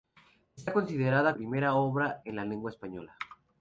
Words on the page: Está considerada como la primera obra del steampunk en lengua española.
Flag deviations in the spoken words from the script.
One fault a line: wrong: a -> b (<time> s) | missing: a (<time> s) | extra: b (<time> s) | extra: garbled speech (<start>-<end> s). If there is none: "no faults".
missing: como la (1.4 s)
missing: del steampunk (2.2 s)